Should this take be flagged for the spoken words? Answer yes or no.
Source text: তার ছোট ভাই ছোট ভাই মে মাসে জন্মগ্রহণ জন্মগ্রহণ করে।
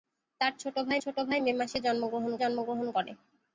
no